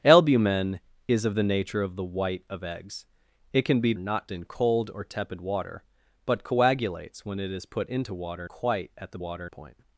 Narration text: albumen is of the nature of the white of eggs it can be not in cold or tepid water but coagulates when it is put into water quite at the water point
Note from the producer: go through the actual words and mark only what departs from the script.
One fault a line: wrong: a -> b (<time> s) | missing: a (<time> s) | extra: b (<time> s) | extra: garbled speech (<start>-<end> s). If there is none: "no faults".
no faults